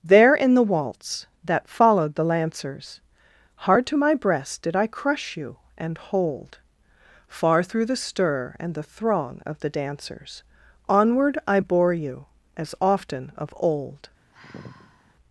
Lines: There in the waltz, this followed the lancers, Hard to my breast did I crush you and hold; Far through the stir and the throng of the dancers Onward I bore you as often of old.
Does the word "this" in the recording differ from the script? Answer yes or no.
yes